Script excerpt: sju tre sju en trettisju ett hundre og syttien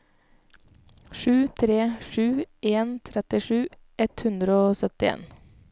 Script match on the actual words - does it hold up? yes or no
yes